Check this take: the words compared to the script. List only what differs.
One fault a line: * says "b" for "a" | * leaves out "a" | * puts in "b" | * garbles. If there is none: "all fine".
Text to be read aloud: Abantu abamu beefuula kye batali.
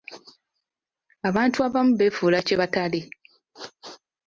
all fine